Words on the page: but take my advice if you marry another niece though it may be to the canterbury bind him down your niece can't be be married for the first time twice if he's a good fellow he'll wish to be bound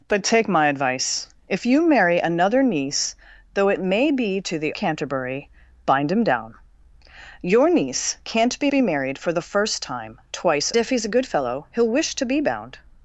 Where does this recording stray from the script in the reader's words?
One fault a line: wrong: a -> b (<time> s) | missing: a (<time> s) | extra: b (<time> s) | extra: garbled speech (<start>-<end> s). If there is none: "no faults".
no faults